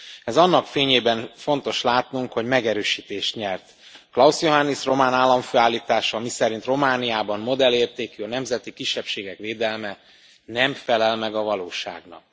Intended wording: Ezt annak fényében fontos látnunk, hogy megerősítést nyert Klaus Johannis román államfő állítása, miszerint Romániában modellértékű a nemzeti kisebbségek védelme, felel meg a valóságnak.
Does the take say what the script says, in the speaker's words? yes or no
no